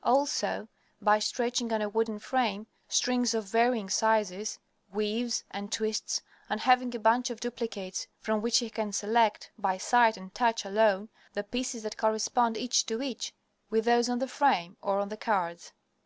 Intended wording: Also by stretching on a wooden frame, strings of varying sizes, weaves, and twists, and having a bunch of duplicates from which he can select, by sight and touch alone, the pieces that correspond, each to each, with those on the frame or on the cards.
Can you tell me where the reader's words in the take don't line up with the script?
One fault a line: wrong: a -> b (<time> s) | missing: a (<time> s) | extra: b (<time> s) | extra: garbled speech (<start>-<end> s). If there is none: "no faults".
no faults